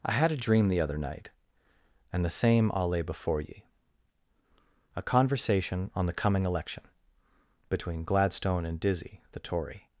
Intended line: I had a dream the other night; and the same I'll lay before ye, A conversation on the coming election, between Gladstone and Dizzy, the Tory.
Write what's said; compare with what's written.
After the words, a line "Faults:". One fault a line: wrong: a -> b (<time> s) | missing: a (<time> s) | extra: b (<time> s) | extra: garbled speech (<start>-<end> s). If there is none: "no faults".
I had a dream the other night; and the same I'll lay before ye, A conversation on the coming election, between Gladstone and Dizzy, the Tory.
Faults:
no faults